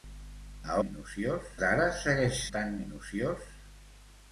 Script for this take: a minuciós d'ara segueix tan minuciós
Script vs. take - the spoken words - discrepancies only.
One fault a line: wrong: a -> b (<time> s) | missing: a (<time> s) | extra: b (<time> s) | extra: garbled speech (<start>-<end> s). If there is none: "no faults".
no faults